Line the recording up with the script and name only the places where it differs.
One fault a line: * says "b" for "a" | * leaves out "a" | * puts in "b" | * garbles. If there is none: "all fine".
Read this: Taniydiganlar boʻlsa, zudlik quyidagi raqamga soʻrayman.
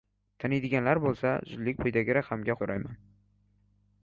all fine